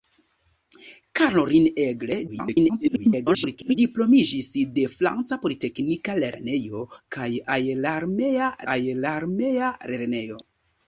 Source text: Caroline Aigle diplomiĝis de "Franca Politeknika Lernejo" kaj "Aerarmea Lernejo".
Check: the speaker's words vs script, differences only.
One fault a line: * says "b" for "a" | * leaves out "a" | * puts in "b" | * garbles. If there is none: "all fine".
* garbles
* puts in "aerarmea"